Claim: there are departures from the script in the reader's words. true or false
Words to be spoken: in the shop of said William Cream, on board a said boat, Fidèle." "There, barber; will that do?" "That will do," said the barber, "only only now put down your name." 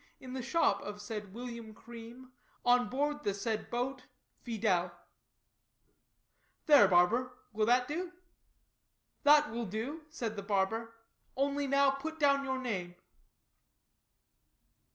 true